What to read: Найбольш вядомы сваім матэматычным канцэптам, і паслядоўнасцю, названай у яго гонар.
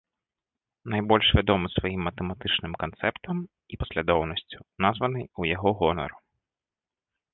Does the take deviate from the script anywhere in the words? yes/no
no